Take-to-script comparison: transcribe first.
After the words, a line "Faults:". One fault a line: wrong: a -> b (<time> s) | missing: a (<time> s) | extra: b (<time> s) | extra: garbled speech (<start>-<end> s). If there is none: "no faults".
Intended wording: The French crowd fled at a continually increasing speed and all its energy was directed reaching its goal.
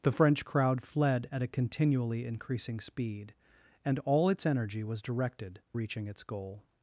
The French crowd fled at a continually increasing speed and all its energy was directed reaching its goal.
Faults:
no faults